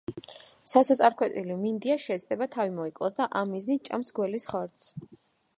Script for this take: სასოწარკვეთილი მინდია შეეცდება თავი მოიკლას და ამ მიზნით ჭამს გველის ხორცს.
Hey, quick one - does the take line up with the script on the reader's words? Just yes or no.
yes